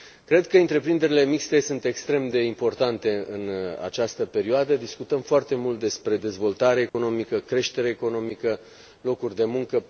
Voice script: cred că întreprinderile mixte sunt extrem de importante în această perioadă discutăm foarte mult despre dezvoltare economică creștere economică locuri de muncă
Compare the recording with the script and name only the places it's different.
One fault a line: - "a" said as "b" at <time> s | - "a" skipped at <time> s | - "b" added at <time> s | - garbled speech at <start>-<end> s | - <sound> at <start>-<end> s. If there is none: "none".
- dropout at 6.9-6.9 s